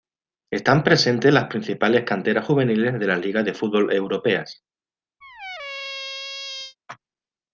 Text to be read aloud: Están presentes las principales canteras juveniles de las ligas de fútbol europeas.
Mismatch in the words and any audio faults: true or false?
true